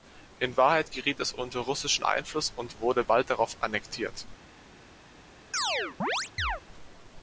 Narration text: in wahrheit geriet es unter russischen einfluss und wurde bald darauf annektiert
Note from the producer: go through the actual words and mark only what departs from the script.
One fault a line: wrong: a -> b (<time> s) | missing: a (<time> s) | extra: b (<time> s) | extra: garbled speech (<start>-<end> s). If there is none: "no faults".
no faults